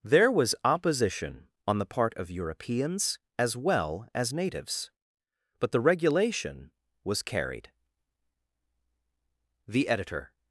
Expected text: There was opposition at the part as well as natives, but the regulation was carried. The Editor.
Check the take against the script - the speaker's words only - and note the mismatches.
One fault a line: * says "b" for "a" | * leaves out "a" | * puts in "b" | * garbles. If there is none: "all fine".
* says "on" for "at"
* puts in "of Europeans"